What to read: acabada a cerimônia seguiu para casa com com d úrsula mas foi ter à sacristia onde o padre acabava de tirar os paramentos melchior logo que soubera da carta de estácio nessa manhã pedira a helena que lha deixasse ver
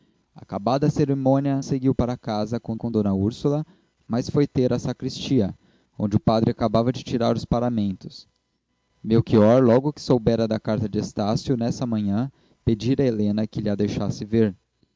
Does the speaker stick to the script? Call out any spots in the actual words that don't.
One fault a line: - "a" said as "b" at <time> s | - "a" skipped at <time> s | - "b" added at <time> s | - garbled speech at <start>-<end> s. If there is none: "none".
none